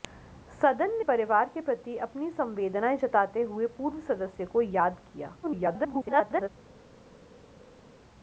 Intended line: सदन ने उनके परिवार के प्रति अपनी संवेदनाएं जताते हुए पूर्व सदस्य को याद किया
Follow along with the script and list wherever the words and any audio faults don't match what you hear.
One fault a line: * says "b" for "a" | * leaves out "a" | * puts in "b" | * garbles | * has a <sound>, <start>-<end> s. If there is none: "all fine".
* leaves out "उनके"
* garbles